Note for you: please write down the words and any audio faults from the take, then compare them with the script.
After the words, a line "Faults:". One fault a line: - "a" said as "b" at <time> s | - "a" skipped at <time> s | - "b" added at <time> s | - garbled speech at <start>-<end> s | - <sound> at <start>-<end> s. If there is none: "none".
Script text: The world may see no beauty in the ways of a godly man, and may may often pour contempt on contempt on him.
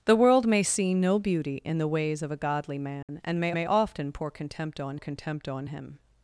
The world may see no beauty in the ways of a godly man, and may may often pour contempt on contempt on him.
Faults:
- dropout at 3.0-3.1 s